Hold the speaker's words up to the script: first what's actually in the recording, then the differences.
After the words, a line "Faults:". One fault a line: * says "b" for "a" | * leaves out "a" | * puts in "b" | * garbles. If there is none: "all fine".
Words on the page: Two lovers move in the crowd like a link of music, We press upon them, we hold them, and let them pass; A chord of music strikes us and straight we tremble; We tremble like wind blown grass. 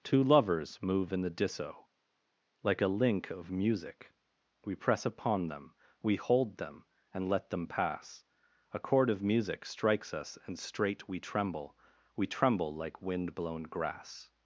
Two lovers move in the disso like a link of music, We press upon them, we hold them, and let them pass; A chord of music strikes us and straight we tremble; We tremble like wind blown grass.
Faults:
* says "disso" for "crowd"